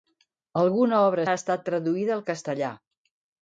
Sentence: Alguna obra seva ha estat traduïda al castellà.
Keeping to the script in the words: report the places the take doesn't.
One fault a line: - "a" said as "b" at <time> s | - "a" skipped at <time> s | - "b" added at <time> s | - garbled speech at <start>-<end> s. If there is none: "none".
- "seva" skipped at 1.2 s